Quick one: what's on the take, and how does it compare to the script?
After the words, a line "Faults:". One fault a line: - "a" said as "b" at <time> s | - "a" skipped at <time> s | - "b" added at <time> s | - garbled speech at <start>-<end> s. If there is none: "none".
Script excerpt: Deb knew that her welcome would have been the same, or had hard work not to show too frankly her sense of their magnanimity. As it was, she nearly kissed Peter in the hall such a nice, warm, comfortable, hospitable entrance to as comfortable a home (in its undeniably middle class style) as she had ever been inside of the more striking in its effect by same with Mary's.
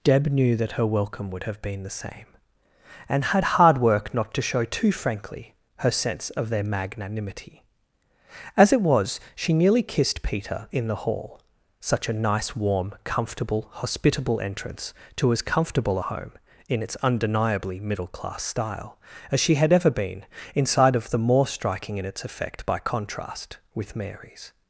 Deb knew that her welcome would have been the same, and had hard work not to show too frankly her sense of their magnanimity. As it was, she nearly kissed Peter in the hall such a nice, warm, comfortable, hospitable entrance to as comfortable a home (in its undeniably middle class style) as she had ever been inside of the more striking in its effect by contrast with Mary's.
Faults:
- "or" said as "and" at 3.1 s
- "same" said as "contrast" at 22.8 s